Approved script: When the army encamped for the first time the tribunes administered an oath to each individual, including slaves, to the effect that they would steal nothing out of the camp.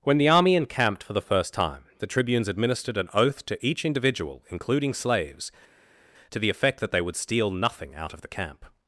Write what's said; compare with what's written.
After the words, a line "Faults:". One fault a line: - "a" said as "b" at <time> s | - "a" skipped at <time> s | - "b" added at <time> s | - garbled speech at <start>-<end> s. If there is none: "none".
When the army encamped for the first time the tribunes administered an oath to each individual, including slaves, to the effect that they would steal nothing out of the camp.
Faults:
none